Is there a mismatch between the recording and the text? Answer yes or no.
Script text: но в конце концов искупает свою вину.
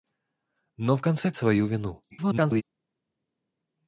yes